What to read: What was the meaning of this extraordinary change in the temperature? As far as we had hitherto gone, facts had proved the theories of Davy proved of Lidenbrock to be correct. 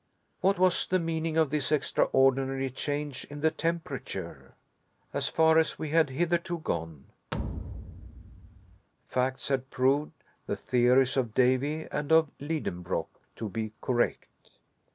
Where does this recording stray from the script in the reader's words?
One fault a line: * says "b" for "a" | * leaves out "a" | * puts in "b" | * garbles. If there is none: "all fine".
* says "and" for "proved"